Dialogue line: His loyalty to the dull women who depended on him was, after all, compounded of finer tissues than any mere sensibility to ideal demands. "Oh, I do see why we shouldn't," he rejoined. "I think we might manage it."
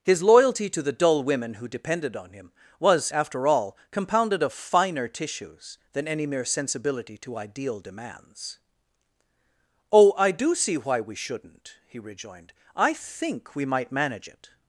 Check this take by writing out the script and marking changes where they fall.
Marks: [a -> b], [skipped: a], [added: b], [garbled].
His loyalty to the dull women who depended on him was, after all, compounded of finer tissues than any mere sensibility to ideal demands. "Oh, I do see why we shouldn't," he rejoined. "I think we might manage it."